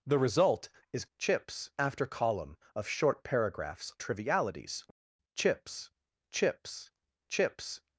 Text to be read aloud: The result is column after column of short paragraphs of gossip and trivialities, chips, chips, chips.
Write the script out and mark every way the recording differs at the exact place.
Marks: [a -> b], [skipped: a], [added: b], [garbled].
The result is [column -> chips] after column of short paragraphs [skipped: of gossip and] trivialities, chips, chips, chips.